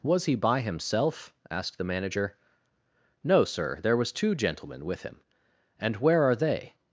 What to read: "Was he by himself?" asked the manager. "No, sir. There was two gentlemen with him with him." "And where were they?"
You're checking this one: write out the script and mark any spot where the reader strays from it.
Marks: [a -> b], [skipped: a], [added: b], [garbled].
"Was he by himself?" asked the manager. "No, sir. There was two gentlemen with him [skipped: with him."] "And where [were -> are] they?"